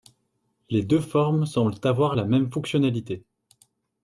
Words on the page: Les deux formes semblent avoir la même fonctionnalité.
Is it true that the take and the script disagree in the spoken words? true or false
false